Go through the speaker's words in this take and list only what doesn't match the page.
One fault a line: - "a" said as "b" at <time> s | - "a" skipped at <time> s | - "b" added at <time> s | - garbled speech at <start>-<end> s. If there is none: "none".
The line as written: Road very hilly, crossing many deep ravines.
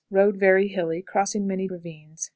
- "deep" skipped at 1.7 s